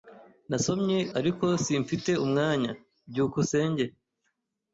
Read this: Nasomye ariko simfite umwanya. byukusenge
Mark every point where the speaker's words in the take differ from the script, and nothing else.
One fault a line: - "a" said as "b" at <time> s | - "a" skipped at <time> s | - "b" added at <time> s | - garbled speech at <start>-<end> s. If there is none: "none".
none